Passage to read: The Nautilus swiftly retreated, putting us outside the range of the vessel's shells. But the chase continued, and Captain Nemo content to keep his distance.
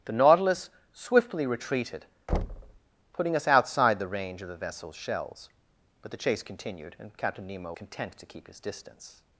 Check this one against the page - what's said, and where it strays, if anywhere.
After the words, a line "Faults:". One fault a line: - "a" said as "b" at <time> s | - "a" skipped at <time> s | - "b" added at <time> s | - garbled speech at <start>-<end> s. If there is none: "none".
The Nautilus swiftly retreated, putting us outside the range of the vessel's shells. But the chase continued, and Captain Nemo content to keep his distance.
Faults:
none